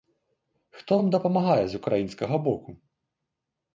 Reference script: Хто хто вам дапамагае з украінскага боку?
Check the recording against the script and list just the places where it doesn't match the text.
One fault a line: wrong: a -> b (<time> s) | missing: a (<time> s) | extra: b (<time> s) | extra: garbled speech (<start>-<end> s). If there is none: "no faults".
missing: хто (1.0 s)